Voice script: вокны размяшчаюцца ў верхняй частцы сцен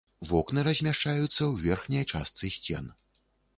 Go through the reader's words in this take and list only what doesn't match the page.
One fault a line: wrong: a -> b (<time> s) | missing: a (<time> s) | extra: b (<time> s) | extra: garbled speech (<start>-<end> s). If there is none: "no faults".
no faults